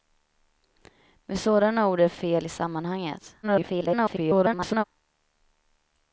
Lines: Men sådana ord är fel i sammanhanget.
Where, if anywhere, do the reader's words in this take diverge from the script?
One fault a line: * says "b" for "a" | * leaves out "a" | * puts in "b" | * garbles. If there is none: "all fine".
* garbles